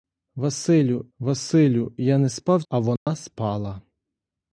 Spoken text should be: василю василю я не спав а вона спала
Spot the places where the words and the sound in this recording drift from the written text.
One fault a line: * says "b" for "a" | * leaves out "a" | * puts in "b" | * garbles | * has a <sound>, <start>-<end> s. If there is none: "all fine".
* has a dropout, 3.0-3.1 s